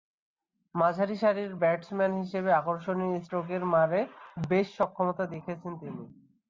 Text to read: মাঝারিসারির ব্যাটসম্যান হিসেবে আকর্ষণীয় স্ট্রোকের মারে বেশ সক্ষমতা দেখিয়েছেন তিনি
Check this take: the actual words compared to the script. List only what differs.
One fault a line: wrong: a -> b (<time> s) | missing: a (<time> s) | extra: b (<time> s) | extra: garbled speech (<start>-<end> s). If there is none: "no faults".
no faults